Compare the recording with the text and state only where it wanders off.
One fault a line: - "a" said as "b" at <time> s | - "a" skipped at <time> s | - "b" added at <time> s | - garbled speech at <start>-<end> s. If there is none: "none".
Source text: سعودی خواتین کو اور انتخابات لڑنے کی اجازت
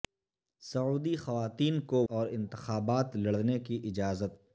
none